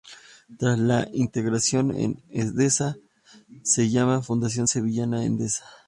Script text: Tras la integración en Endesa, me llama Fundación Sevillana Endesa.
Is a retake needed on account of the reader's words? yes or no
yes